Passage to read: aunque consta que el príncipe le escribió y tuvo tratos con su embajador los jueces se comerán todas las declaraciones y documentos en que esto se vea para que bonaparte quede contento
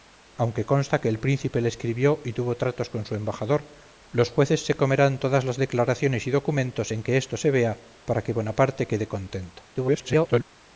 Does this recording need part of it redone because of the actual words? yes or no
yes